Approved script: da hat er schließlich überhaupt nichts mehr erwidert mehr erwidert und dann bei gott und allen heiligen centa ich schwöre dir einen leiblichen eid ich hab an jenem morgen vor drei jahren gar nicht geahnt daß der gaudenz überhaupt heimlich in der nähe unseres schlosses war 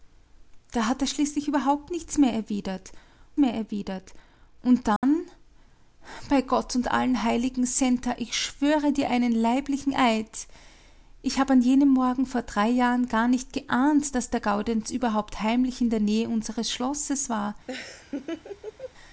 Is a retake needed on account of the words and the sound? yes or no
yes